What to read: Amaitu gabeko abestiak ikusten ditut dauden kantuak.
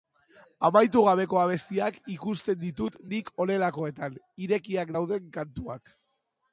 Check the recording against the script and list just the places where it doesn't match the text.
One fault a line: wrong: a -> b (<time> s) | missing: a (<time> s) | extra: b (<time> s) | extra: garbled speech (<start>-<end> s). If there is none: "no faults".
extra: nik honelakoetan irekiak (3.1 s)